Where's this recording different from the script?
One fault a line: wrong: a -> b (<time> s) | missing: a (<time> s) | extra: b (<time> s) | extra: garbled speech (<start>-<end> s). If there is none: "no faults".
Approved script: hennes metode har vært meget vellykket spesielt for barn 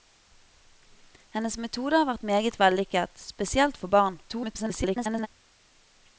extra: garbled speech (4.3-5.3 s)